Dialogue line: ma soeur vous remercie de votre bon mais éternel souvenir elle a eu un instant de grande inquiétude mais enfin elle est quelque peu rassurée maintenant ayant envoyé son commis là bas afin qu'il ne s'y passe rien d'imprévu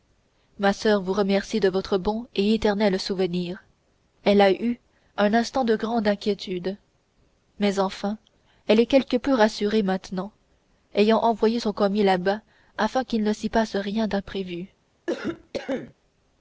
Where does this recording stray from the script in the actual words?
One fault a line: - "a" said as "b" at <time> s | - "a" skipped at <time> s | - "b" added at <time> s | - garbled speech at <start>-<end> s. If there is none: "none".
- "mais" said as "et" at 2.3 s